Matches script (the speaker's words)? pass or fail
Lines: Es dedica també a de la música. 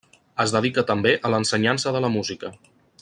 fail